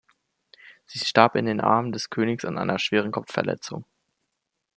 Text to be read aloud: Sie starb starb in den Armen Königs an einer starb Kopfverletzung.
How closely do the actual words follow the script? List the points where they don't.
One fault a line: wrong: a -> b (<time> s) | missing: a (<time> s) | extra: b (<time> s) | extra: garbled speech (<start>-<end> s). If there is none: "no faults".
missing: starb (1.4 s)
extra: des (1.9 s)
wrong: starb -> schweren (2.8 s)